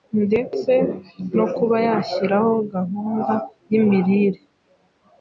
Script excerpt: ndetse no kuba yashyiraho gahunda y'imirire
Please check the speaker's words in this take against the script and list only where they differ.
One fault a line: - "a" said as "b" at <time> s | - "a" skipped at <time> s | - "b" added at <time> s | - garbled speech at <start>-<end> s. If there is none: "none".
none